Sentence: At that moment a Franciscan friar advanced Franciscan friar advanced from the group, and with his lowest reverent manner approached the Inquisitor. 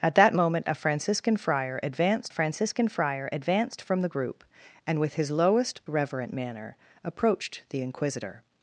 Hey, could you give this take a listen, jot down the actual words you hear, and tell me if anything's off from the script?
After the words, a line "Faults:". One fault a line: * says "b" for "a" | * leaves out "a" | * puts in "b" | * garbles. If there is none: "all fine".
At that moment a Franciscan friar advanced Franciscan friar advanced from the group, and with his lowest reverent manner approached the Inquisitor.
Faults:
all fine